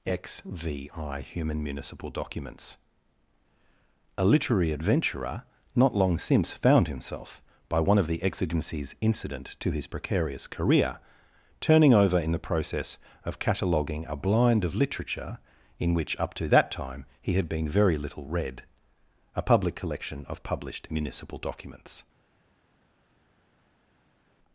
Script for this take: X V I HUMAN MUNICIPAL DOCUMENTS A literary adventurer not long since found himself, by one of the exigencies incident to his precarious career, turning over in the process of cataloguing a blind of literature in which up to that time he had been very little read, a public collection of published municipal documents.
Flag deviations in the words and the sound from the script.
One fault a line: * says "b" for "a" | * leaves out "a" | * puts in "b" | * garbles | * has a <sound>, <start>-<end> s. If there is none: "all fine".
all fine